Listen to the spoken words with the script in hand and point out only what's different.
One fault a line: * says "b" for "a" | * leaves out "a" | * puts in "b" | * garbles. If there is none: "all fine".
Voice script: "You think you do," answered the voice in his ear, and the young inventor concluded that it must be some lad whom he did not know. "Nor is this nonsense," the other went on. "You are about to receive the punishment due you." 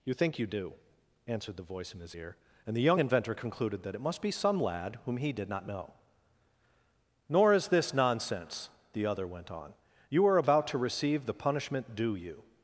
all fine